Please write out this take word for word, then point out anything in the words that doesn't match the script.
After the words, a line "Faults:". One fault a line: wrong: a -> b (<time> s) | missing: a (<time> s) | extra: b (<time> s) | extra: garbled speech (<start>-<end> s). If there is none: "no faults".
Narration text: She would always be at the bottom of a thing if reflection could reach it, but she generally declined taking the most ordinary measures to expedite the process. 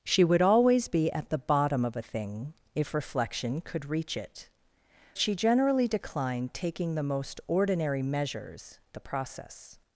She would always be at the bottom of a thing if reflection could reach it, she generally declined taking the most ordinary measures the process.
Faults:
missing: but (4.5 s)
missing: to expedite (8.8 s)